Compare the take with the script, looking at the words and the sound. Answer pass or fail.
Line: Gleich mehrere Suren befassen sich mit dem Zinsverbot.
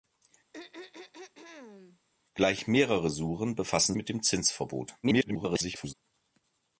fail